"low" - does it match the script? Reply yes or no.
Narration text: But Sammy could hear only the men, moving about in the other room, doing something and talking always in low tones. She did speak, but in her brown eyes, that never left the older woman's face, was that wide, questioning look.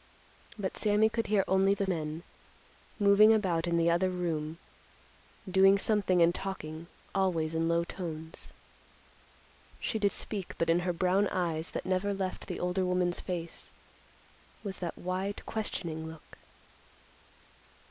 yes